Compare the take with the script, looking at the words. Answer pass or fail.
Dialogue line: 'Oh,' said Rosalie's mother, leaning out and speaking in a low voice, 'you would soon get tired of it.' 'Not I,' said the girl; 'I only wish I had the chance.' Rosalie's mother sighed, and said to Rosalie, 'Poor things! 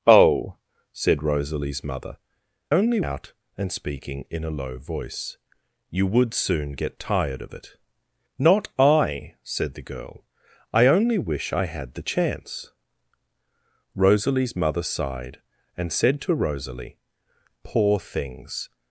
fail